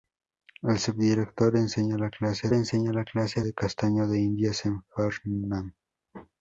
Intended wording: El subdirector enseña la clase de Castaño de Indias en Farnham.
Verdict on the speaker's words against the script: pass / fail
fail